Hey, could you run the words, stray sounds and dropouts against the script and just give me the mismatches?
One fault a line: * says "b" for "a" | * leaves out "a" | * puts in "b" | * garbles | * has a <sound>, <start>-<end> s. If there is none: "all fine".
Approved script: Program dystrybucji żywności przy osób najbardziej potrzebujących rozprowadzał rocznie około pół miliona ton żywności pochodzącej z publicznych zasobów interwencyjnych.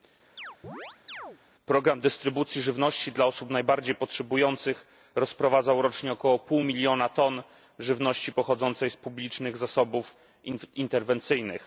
* has a chirp, 0.4-1.4 s
* says "dla" for "przy"